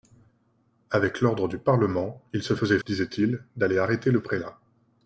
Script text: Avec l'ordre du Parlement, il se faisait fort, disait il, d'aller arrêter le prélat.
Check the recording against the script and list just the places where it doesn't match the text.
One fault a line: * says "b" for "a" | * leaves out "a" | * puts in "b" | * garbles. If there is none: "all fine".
* leaves out "fort"